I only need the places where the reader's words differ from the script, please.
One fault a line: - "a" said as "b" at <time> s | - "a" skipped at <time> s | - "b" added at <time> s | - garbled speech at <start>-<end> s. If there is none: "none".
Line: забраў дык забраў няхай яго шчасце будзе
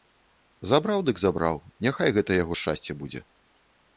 - "гэта" added at 2.2 s